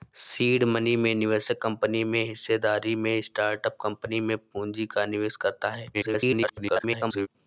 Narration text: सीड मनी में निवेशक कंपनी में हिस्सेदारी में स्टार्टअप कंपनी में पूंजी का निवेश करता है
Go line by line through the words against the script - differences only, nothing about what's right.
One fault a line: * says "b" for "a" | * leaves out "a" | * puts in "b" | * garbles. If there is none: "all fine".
* garbles